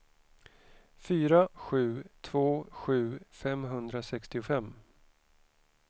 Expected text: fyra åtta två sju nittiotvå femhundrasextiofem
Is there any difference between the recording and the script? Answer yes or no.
yes